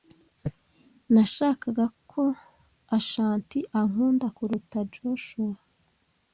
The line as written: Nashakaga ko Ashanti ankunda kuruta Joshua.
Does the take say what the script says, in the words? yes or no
yes